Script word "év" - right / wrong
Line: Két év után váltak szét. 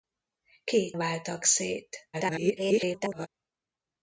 wrong